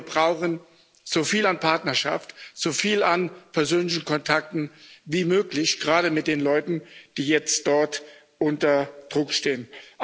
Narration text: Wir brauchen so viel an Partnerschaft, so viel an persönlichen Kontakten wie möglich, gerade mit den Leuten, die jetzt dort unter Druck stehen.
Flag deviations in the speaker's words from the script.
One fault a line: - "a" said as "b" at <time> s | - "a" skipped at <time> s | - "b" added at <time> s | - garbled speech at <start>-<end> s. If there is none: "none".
none